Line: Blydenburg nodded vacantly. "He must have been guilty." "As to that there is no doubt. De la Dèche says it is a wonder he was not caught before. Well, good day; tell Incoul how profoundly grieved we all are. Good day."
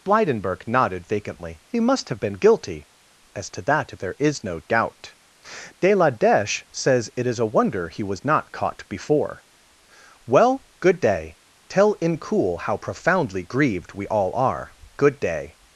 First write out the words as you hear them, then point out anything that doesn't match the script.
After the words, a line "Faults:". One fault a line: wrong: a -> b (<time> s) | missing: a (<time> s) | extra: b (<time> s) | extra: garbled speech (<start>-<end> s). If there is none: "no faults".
Blydenburg nodded vacantly. "He must have been guilty." "As to that there is no doubt. De la Dèche says it is a wonder he was not caught before. Well, good day; tell Incoul how profoundly grieved we all are. Good day."
Faults:
no faults